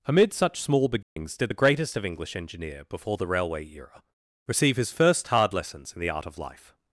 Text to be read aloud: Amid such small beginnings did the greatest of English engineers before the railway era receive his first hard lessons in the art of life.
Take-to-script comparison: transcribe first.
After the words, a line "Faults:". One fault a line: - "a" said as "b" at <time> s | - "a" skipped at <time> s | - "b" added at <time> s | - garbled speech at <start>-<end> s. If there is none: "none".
Amid such small beginnings did the greatest of English engineer before the railway era receive his first hard lessons in the art of life.
Faults:
- "engineers" said as "engineer" at 2.4 s